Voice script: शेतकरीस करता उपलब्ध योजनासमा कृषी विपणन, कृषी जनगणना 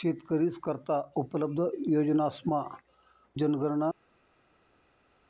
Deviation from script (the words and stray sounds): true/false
true